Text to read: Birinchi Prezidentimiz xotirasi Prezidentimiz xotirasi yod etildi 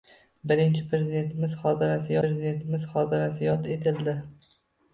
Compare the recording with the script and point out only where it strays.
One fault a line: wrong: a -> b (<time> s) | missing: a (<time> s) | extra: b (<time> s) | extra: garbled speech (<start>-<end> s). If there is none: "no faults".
no faults